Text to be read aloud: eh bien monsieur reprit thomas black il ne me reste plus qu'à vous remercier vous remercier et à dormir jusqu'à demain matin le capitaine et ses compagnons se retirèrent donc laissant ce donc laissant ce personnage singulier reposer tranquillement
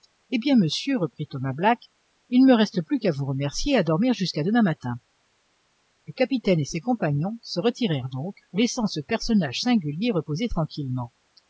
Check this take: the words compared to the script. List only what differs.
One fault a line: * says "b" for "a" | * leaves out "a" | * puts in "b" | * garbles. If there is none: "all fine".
* leaves out "vous remercier"
* leaves out "donc laissant ce"